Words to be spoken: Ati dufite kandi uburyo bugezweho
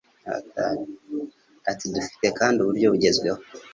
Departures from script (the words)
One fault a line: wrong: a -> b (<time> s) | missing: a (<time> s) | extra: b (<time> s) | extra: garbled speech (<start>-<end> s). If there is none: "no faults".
no faults